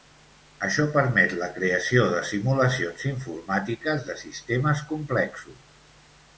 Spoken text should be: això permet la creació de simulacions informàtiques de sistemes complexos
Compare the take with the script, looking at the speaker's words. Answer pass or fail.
pass